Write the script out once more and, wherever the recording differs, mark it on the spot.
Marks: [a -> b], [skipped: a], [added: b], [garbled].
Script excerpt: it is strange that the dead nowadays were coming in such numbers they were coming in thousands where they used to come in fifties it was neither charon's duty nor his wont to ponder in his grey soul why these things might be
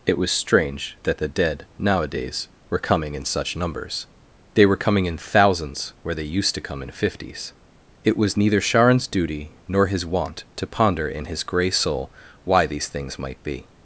it [is -> was] strange that the dead nowadays were coming in such numbers they were coming in thousands where they used to come in fifties it was neither charon's duty nor his wont to ponder in his grey soul why these things might be